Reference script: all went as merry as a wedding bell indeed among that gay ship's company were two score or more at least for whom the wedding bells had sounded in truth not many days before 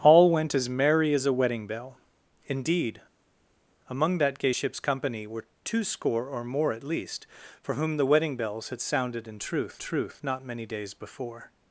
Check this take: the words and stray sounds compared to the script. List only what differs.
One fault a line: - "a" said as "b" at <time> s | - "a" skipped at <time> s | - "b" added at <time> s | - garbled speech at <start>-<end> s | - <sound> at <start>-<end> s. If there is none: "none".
- "truth" added at 9.8 s